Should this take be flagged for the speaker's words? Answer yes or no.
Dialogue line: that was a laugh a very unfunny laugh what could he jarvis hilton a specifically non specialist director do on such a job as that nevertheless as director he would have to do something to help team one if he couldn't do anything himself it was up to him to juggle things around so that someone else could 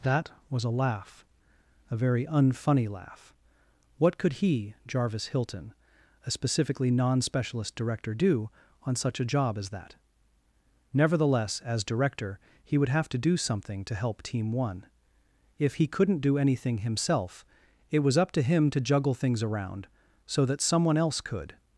no